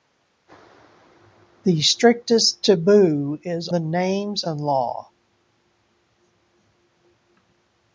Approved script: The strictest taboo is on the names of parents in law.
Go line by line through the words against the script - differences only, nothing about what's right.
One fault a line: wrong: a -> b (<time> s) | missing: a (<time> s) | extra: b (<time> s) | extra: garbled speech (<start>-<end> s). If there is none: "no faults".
missing: on (3.7 s)
missing: of parents (4.4 s)